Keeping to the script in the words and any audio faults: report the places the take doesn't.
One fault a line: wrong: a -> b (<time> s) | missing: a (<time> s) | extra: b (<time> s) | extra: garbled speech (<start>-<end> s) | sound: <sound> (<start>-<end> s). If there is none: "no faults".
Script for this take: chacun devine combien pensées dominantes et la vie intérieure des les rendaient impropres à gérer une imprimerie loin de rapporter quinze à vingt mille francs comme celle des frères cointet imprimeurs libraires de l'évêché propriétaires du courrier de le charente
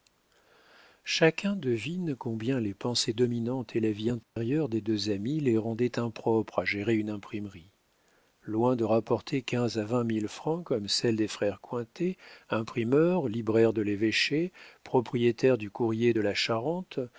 extra: les (2.6 s)
sound: dropout (4.2-4.4 s)
extra: deux amis (4.8 s)
wrong: le -> la (16.2 s)